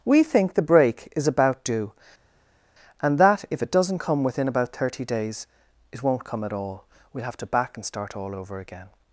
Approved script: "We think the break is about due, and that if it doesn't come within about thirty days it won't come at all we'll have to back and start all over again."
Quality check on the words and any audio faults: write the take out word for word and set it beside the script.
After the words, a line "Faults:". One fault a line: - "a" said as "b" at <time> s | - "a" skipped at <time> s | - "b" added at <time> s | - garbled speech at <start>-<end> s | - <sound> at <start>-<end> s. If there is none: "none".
"We think the break is about due, and that if it doesn't come within about thirty days it won't come at all we'll have to back and start all over again."
Faults:
none